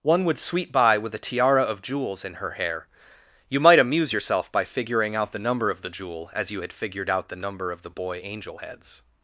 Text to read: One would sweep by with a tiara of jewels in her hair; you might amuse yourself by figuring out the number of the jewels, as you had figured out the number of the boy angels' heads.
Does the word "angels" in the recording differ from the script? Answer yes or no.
yes